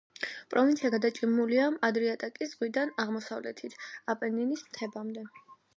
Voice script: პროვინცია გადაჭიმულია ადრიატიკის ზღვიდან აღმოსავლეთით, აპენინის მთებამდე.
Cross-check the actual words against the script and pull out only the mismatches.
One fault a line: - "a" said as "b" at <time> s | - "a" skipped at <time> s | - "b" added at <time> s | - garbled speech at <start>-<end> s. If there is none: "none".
none